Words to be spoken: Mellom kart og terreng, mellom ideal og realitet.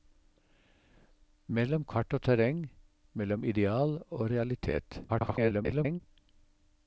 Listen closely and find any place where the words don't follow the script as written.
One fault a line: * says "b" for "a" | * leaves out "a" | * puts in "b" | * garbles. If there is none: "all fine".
* garbles